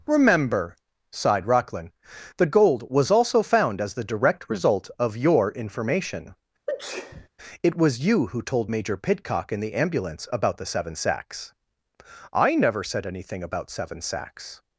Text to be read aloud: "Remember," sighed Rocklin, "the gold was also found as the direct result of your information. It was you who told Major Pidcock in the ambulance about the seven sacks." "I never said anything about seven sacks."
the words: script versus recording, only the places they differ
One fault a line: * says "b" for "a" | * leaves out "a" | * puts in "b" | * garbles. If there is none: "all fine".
all fine